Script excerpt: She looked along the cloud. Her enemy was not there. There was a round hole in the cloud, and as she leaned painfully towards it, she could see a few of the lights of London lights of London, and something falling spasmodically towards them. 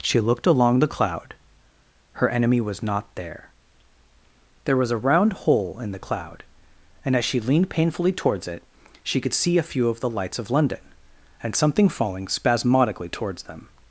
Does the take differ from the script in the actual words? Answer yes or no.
yes